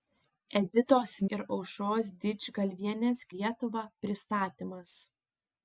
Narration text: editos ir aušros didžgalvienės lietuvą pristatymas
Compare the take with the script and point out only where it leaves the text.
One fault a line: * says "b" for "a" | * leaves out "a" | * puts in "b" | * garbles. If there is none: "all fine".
all fine